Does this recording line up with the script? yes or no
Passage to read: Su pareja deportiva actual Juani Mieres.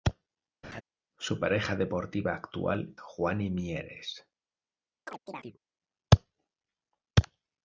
yes